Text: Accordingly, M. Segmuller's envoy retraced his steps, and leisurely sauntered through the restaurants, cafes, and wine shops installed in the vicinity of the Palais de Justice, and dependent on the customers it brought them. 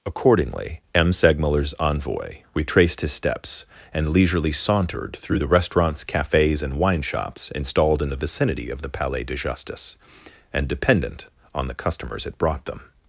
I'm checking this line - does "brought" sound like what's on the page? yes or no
yes